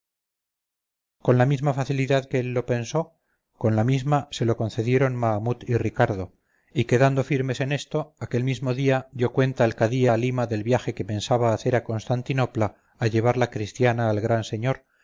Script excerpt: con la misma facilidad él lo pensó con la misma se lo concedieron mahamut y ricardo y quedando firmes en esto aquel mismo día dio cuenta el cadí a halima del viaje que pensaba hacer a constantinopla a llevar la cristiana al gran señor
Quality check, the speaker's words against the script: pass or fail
fail